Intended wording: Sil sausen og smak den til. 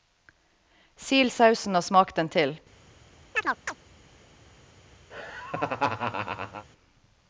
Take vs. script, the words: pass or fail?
pass